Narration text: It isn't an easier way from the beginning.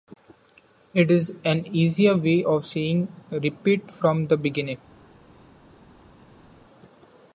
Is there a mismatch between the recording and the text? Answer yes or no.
yes